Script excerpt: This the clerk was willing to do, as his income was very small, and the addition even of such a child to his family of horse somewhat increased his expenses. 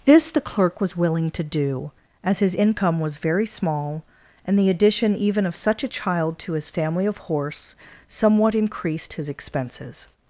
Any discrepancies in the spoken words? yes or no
no